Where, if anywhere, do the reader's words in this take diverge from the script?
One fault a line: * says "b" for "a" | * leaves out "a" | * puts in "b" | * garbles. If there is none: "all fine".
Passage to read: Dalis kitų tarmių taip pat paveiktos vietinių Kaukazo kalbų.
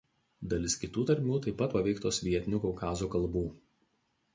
all fine